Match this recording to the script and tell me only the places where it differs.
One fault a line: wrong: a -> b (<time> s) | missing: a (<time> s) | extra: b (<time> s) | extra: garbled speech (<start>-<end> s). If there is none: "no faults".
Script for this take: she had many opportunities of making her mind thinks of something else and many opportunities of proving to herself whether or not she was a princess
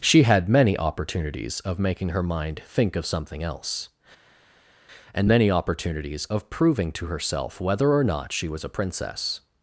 wrong: thinks -> think (2.6 s)